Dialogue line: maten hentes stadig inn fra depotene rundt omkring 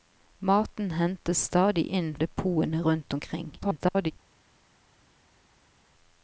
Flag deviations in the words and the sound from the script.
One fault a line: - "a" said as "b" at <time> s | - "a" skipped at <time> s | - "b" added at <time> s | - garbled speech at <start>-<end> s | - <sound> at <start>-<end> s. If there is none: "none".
- "fra" skipped at 2.1 s
- garbled speech at 3.6-4.1 s